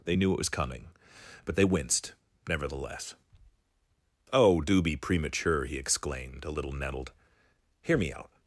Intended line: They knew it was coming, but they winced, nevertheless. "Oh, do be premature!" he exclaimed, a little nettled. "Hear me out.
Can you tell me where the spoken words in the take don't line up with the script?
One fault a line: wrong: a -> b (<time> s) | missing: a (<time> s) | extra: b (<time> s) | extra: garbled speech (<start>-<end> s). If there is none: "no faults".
no faults